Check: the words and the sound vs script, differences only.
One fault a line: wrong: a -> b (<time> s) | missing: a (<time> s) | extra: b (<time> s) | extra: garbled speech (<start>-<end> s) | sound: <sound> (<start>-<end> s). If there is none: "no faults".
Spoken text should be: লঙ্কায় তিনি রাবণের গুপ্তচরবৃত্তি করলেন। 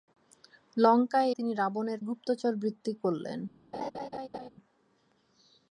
sound: laugh (3.7-4.5 s)